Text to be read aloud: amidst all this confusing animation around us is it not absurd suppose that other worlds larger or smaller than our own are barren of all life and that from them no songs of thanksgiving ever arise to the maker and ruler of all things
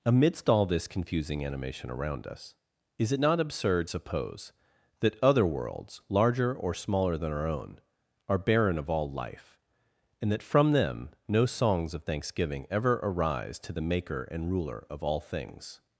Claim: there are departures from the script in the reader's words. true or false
false